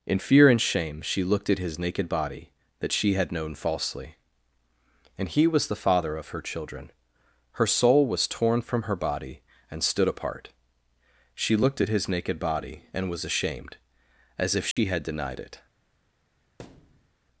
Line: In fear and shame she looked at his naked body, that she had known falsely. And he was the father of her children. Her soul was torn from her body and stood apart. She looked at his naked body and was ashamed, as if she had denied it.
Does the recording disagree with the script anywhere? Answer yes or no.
no